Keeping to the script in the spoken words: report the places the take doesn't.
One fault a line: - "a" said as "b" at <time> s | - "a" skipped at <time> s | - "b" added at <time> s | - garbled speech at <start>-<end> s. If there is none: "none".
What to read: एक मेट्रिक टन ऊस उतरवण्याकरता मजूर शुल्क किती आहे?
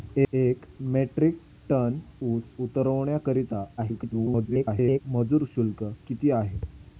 - garbled speech at 3.8-5.0 s